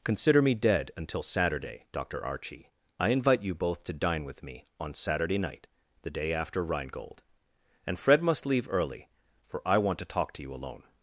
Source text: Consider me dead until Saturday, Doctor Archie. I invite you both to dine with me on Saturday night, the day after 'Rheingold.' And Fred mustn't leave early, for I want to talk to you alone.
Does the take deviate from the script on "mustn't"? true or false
true